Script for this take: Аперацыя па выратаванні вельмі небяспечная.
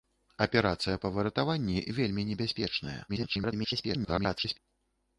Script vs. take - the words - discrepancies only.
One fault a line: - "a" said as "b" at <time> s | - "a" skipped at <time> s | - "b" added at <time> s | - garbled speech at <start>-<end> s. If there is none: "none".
- garbled speech at 3.1-4.6 s